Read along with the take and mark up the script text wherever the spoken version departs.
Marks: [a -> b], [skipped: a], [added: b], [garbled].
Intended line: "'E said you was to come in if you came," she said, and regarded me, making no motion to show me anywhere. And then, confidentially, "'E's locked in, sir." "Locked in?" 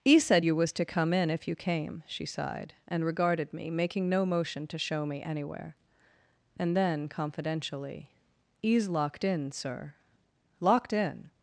"'E said you was to come in if you came," she [said, -> sighed] and regarded me, making no motion to show me anywhere. And then, confidentially, "'E's locked in, sir." "Locked in?"